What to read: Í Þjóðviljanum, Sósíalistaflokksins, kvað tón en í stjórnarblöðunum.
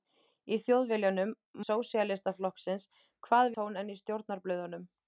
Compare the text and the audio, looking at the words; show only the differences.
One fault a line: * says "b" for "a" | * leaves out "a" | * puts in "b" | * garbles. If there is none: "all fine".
all fine